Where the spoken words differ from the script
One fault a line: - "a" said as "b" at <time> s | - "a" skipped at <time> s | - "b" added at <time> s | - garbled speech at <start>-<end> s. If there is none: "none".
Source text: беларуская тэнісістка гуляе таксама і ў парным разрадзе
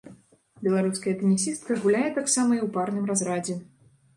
none